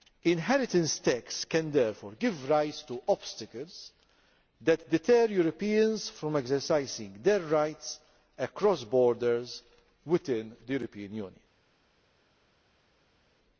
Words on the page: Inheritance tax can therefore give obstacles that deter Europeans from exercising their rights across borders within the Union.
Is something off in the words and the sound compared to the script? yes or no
yes